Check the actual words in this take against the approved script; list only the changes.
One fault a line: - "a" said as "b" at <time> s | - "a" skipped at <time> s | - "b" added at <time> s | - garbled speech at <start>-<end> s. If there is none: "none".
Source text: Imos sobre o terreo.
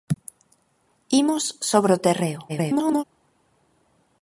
- garbled speech at 2.5-3.0 s